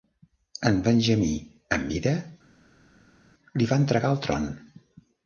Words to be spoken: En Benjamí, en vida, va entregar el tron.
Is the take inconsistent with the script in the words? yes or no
yes